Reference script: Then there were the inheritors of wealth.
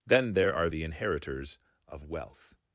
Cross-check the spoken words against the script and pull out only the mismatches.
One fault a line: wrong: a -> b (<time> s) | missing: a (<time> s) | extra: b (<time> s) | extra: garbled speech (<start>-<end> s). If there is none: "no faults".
wrong: were -> are (0.5 s)